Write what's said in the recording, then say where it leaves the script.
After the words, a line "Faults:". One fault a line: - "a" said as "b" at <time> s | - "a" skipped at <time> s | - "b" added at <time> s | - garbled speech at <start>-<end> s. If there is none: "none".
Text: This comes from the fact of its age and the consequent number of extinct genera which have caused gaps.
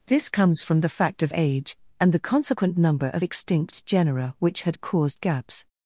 This comes from the fact of age and the consequent number of extinct genera which had caused gaps.
Faults:
- "its" skipped at 1.3 s
- "have" said as "had" at 4.6 s